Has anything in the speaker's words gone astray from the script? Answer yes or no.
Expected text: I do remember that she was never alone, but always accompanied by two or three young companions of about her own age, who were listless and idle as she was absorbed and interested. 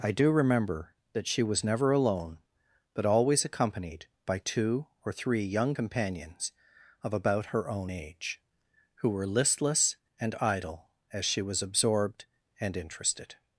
no